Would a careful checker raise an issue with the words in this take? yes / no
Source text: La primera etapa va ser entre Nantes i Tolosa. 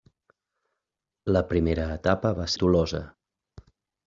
yes